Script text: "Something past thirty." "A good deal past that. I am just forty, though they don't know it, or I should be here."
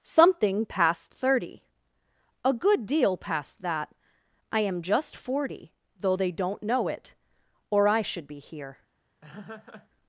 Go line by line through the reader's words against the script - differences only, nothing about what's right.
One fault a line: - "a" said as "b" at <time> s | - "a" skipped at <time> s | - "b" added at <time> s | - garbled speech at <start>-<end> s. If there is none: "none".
none